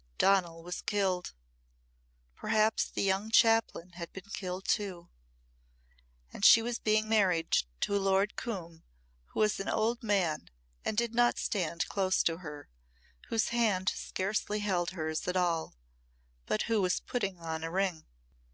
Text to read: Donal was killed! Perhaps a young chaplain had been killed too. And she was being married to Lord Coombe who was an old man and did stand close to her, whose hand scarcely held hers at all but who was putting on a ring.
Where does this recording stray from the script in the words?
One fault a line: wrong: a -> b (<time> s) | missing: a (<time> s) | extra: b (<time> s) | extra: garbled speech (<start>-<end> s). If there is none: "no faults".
wrong: a -> the (2.9 s)
extra: not (11.1 s)